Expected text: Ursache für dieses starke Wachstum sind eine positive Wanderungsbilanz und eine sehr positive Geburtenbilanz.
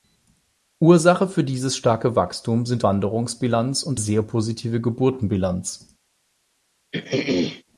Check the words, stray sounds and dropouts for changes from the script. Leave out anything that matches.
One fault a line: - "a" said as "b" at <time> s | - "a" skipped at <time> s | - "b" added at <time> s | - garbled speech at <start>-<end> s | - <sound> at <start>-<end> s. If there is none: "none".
- "eine positive" skipped at 2.9 s
- "eine" skipped at 4.0 s
- throat clearing at 6.9-7.6 s